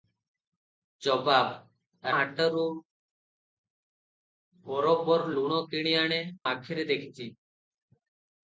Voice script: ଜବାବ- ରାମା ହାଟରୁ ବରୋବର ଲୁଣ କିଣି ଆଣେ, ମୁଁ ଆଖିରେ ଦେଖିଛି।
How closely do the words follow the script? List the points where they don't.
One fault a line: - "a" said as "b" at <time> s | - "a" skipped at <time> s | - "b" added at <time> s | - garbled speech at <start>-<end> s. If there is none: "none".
- "ରାମା" skipped at 2.1 s
- "ମୁଁ" skipped at 6.2 s